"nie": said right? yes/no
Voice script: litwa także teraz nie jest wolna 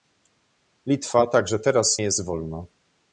no